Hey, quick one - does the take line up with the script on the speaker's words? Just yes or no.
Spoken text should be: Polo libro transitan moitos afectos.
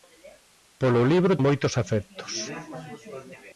no